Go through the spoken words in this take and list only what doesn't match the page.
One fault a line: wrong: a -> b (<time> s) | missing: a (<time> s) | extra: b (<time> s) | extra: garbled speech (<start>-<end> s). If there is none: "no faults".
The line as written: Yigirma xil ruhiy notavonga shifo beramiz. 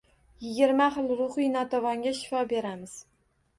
no faults